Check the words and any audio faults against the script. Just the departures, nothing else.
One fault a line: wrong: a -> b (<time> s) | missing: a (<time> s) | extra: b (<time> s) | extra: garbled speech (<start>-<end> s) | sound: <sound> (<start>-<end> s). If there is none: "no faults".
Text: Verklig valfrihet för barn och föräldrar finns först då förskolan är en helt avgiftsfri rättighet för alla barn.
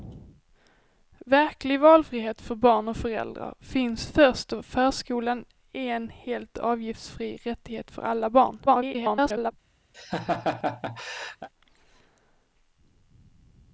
extra: garbled speech (8.7-9.5 s)
sound: laugh (9.9-11.5 s)